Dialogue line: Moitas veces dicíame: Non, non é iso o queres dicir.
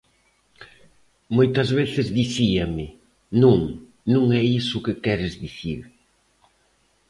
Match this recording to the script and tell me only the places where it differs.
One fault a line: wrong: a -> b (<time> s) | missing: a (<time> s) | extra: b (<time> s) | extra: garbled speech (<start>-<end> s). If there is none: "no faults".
extra: que (4.9 s)